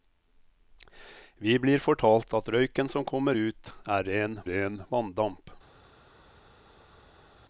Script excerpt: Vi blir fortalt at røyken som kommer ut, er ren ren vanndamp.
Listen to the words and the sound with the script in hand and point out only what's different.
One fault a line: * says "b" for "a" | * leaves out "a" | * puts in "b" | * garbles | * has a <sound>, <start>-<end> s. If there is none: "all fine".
all fine